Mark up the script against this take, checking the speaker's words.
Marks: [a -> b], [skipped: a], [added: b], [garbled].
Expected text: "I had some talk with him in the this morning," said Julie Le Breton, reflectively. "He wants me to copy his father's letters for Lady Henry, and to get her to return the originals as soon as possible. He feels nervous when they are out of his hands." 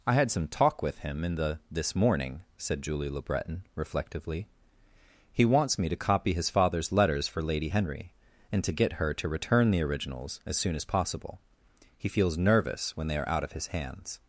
"I had some talk with him in the this morning," said Julie Le Breton, reflectively. "He wants me to copy his father's letters for Lady Henry, and to get her to return the originals as soon as possible. He feels nervous when they are out of his hands."